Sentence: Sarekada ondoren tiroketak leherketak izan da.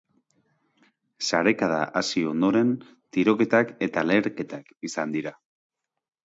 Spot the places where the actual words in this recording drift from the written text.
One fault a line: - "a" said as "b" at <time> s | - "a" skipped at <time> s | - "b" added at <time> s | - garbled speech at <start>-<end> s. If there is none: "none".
- "hasi" added at 2.0 s
- "eta" added at 3.9 s
- "da" said as "dira" at 5.2 s